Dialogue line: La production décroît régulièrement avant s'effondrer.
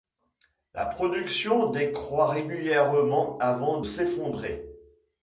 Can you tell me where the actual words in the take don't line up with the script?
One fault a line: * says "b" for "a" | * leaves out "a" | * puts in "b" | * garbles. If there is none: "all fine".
all fine